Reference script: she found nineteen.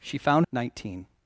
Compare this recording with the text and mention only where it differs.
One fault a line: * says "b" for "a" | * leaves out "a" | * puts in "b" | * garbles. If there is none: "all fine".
all fine